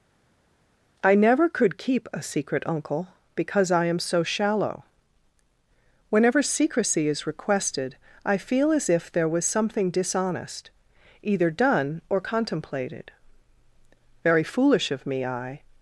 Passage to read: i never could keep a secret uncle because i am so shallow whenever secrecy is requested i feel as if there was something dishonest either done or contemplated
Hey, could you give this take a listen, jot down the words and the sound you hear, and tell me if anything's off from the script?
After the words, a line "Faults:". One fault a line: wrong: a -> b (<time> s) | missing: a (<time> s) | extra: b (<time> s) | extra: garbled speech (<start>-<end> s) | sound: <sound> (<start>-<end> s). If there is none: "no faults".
i never could keep a secret uncle because i am so shallow whenever secrecy is requested i feel as if there was something dishonest either done or contemplated very foolish of me i
Faults:
extra: very foolish of me i (14.2 s)